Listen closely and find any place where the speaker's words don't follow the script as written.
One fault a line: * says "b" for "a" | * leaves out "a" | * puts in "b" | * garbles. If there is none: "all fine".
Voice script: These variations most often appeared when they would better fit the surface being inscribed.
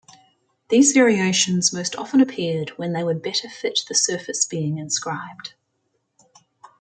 all fine